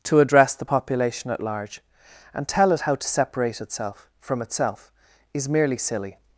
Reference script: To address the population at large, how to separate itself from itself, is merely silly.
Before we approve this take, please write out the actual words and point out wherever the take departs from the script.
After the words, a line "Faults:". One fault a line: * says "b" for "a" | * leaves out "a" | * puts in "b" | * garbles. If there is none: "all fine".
To address the population at large, and tell it how to separate itself from itself, is merely silly.
Faults:
* puts in "and tell it"